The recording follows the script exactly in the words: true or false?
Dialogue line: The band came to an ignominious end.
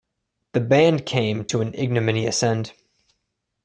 true